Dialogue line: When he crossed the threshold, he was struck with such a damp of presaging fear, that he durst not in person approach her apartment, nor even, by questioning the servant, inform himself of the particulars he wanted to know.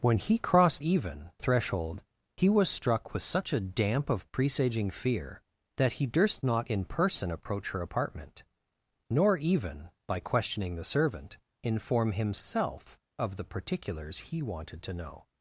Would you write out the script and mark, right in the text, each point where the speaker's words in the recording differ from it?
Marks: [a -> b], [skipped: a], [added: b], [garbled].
When he crossed [the -> even] threshold, he was struck with such a damp of presaging fear, that he durst not in person approach her apartment, nor even, by questioning the servant, inform himself of the particulars he wanted to know.